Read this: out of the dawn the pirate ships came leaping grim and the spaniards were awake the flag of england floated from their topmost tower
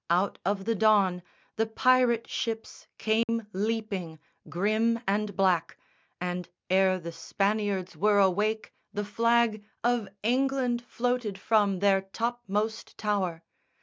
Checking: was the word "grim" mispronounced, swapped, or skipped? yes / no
no